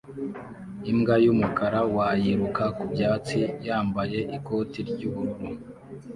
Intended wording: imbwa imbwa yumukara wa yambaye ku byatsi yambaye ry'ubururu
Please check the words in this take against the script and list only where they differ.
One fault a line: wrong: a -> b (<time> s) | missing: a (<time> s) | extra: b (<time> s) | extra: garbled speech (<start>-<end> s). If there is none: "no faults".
missing: imbwa (1.1 s)
wrong: yambaye -> yiruka (2.2 s)
extra: ikoti (4.4 s)